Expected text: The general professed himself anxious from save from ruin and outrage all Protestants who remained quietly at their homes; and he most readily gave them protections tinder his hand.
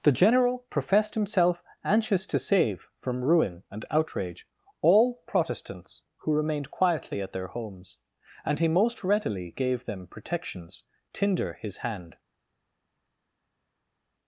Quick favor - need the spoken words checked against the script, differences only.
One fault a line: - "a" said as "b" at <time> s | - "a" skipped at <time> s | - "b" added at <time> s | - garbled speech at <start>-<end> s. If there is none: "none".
- "from" said as "to" at 2.3 s